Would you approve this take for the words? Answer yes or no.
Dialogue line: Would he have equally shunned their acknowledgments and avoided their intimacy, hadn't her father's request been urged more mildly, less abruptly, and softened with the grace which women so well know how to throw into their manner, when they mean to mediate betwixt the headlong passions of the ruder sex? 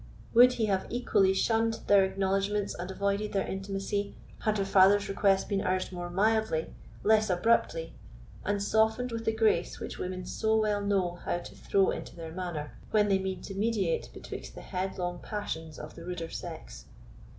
no